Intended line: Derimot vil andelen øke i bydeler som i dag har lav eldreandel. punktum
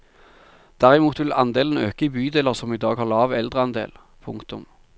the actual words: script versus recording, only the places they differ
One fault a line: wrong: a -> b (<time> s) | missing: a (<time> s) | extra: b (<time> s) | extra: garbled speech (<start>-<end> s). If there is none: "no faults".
no faults